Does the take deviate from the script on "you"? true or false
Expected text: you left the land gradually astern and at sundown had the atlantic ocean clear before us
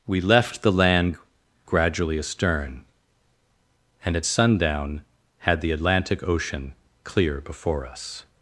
true